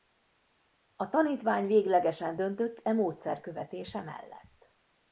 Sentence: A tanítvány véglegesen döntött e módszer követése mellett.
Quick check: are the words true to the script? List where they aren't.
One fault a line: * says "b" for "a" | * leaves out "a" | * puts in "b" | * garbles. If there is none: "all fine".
all fine